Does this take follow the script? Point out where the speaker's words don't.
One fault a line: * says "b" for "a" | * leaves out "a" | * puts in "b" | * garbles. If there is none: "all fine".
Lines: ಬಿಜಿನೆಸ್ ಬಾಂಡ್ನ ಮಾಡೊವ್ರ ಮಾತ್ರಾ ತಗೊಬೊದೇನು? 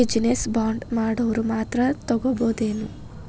all fine